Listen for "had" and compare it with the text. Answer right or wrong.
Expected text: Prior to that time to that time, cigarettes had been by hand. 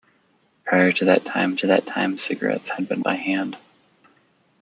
right